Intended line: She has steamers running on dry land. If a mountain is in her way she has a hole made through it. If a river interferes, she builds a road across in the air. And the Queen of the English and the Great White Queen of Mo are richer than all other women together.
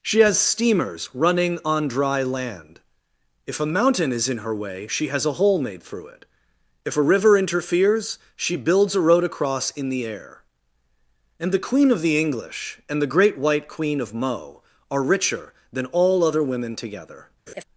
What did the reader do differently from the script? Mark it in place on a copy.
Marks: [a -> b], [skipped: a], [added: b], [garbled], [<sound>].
She has steamers running on dry land. If a mountain is in her way she has a hole made through it. If a river interferes, she builds a road across in the air. And the Queen of the English and the Great White Queen of Mo are richer than all other women together. [laugh]